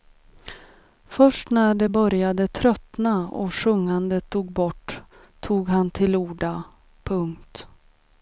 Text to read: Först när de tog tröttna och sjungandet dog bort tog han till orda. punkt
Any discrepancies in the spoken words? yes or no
yes